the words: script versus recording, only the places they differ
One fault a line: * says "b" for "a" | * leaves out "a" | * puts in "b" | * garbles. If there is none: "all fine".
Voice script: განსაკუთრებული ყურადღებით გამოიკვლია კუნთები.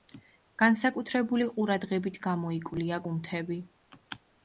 all fine